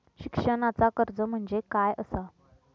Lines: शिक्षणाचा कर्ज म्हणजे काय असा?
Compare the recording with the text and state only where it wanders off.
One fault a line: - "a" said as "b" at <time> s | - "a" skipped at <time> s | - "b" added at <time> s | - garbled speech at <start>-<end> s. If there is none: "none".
none